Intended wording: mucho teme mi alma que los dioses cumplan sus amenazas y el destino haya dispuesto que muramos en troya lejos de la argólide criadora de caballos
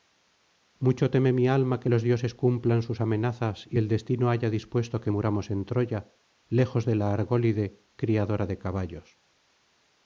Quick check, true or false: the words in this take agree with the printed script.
true